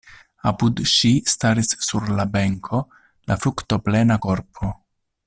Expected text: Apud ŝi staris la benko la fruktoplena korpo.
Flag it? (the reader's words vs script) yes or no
yes